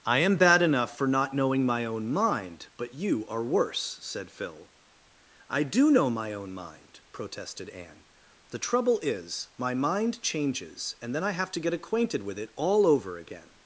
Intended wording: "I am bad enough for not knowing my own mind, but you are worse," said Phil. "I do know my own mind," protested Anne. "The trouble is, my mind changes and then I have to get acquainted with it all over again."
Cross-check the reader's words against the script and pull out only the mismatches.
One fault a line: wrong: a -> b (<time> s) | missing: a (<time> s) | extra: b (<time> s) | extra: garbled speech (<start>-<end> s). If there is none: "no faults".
no faults